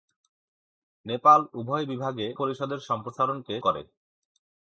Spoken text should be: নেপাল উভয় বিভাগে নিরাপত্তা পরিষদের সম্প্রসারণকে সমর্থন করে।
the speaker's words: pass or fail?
fail